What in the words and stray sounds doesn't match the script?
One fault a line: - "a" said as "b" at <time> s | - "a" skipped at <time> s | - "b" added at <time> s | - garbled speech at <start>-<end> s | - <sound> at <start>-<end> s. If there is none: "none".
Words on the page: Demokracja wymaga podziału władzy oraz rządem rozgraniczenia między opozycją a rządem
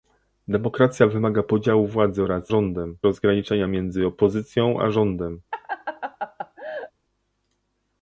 - laugh at 5.5-6.9 s